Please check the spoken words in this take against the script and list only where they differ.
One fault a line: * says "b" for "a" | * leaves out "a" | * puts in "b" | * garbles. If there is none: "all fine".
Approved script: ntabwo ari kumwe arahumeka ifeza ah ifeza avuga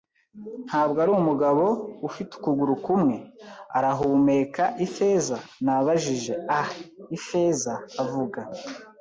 * puts in "umugabo ufite ukuguru"
* puts in "nabajije"